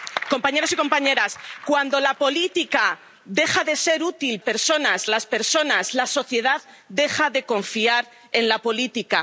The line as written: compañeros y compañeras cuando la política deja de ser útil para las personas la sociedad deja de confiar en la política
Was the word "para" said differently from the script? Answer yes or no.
yes